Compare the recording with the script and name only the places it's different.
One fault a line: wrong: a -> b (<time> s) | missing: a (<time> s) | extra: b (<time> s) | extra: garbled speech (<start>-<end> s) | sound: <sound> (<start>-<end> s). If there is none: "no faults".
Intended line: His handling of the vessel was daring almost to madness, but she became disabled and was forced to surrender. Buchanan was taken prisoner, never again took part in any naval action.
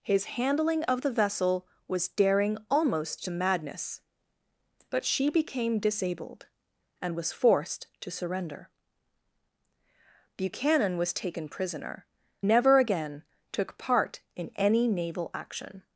no faults